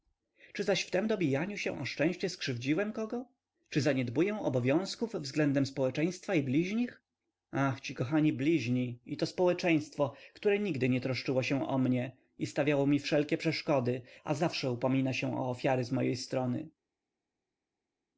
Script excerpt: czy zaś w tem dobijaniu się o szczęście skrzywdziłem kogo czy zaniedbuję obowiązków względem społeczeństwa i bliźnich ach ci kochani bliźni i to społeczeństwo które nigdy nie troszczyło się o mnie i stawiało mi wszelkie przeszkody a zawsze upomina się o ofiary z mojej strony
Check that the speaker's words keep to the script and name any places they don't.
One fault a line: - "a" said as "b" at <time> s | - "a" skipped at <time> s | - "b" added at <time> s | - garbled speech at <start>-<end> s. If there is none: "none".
none